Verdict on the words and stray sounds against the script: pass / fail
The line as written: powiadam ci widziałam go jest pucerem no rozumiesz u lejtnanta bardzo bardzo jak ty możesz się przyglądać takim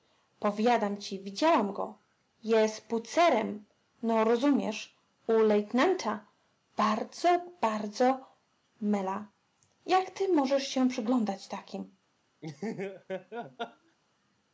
fail